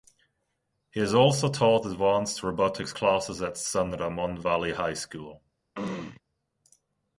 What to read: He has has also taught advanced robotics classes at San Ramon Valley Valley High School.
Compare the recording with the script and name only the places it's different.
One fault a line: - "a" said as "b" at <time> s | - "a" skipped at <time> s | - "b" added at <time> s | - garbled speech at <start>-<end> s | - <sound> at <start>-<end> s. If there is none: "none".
- "has" skipped at 1.1 s
- "Valley" skipped at 4.7 s
- throat clearing at 5.7-6.2 s